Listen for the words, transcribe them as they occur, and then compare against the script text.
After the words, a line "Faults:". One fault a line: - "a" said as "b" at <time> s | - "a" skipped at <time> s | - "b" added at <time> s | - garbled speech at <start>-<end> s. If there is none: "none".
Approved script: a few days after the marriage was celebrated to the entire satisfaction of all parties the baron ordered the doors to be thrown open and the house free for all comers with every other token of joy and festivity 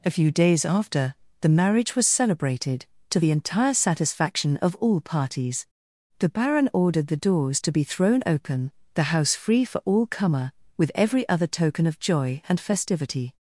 a few days after the marriage was celebrated to the entire satisfaction of all parties the baron ordered the doors to be thrown open the house free for all comer with every other token of joy and festivity
Faults:
- "and" skipped at 8.7 s
- "comers" said as "comer" at 10.1 s